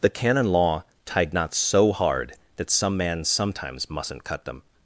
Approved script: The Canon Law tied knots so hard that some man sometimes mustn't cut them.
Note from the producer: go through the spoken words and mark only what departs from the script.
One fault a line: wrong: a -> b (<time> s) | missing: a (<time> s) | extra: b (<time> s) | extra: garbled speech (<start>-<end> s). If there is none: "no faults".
no faults